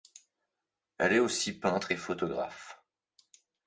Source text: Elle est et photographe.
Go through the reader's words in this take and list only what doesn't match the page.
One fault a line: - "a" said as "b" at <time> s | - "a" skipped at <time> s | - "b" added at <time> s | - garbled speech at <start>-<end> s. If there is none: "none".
- "aussi peintre" added at 1.2 s